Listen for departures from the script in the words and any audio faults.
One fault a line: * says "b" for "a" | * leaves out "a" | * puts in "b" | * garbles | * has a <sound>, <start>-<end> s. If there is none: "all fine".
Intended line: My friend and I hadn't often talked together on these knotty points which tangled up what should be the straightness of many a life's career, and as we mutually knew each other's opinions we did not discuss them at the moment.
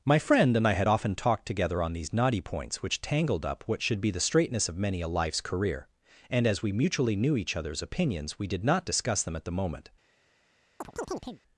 * says "had" for "hadn't"
* has a chirp, 10.8-11.4 s